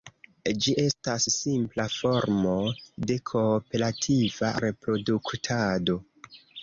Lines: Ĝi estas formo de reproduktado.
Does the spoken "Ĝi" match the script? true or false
true